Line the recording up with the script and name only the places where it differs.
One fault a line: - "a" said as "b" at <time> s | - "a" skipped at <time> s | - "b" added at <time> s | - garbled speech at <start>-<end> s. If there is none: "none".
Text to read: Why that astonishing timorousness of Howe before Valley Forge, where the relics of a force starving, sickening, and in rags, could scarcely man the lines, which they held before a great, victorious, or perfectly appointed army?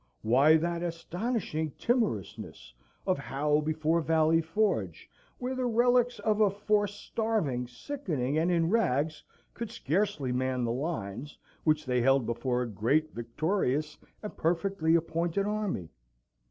- "or" said as "and" at 14.2 s